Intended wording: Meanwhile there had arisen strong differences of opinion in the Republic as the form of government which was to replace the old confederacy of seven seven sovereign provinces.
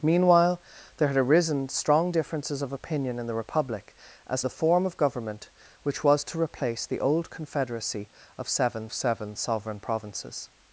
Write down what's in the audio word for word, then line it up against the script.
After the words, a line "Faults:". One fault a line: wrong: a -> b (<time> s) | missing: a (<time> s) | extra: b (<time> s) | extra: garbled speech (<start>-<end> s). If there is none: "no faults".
Meanwhile there had arisen strong differences of opinion in the Republic as the form of government which was to replace the old confederacy of seven seven sovereign provinces.
Faults:
no faults